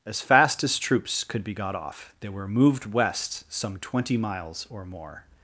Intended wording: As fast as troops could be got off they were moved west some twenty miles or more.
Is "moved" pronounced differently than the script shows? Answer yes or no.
no